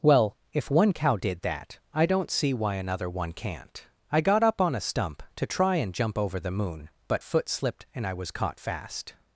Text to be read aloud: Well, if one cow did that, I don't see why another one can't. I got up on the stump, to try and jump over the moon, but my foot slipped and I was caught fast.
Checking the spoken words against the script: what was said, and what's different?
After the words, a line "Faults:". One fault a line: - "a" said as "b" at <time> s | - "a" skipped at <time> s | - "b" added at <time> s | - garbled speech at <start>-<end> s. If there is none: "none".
Well, if one cow did that, I don't see why another one can't. I got up on a stump, to try and jump over the moon, but foot slipped and I was caught fast.
Faults:
- "the" said as "a" at 4.7 s
- "my" skipped at 7.2 s